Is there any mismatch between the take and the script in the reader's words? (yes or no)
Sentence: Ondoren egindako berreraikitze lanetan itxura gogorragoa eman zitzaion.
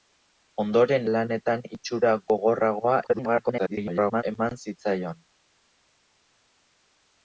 yes